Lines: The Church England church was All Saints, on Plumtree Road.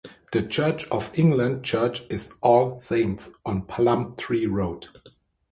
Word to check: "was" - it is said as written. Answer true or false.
false